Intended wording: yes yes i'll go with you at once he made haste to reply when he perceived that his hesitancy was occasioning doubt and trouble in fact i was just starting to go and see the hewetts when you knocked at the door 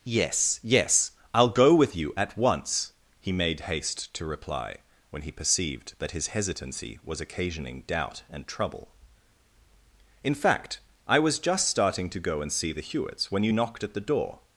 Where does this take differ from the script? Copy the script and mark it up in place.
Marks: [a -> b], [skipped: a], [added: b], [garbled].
yes yes i'll go with you at once he made haste to reply when he perceived that his hesitancy was occasioning doubt and trouble in fact i was just starting to go and see the hewetts when you knocked at the door